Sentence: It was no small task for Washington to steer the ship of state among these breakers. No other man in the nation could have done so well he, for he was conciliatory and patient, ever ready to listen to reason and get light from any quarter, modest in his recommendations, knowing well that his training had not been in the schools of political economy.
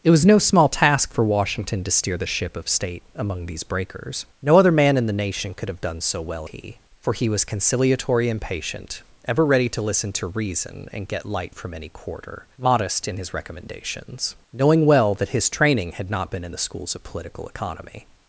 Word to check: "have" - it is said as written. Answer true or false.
true